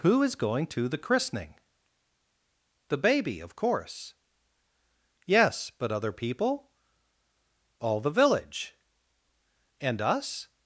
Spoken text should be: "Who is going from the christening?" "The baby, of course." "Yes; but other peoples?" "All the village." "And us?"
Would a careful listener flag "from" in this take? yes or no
yes